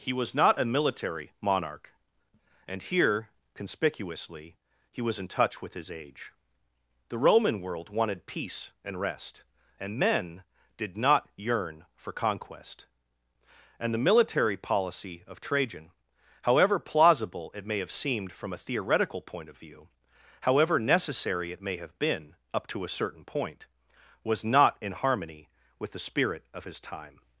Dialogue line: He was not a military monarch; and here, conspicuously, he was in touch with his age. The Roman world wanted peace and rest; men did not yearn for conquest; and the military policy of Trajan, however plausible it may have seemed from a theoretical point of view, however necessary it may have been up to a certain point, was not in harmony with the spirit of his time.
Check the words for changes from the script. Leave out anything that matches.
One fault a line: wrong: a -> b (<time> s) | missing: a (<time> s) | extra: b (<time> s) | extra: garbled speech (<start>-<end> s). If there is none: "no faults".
extra: and (9.8 s)